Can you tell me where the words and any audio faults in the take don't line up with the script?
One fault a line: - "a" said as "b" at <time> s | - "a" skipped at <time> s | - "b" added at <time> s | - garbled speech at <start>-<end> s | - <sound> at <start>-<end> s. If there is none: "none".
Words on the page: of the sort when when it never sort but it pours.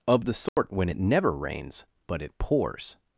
- dropout at 0.5-0.6 s
- "when" skipped at 0.9 s
- "sort" said as "rains" at 1.3 s